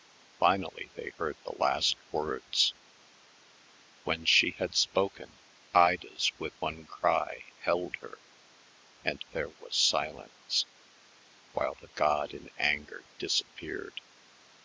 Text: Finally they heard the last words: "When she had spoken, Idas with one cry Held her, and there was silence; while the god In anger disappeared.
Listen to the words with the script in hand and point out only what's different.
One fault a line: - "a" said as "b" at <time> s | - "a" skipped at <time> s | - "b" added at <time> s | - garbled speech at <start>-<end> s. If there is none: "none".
none